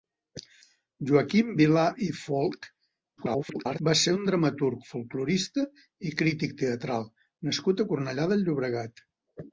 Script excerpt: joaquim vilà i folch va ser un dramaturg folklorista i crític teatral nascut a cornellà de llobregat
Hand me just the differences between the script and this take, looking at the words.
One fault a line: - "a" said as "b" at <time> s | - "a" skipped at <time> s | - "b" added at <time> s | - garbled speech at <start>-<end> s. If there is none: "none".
- garbled speech at 3.2-3.8 s